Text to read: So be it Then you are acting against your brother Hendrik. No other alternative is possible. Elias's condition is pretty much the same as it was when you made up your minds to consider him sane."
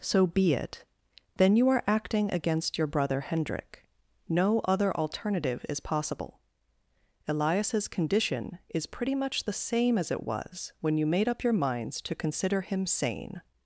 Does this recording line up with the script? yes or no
yes